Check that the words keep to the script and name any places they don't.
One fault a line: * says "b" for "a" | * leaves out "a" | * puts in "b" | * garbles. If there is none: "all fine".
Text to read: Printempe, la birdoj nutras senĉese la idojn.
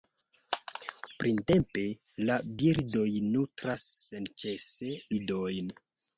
* leaves out "la"